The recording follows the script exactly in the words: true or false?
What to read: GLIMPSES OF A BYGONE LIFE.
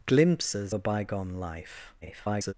false